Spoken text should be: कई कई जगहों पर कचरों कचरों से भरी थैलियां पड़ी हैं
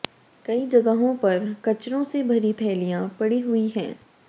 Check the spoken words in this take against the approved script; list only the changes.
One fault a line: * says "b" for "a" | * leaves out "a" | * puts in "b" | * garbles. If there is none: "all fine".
* leaves out "कई"
* leaves out "कचरों"
* puts in "हुई"